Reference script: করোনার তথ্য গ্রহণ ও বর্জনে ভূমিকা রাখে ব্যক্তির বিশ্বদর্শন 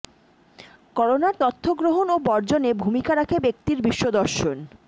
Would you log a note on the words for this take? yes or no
no